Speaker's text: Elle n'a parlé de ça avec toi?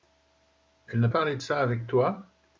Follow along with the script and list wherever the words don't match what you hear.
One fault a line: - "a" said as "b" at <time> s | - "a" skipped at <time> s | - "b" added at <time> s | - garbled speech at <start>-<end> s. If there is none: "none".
none